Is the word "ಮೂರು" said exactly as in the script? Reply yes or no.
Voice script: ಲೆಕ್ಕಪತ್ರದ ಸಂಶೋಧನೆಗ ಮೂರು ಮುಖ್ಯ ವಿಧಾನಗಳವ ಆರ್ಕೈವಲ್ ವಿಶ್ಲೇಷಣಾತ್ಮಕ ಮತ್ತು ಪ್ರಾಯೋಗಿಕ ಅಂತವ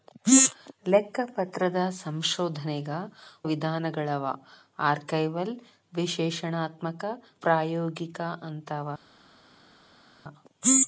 no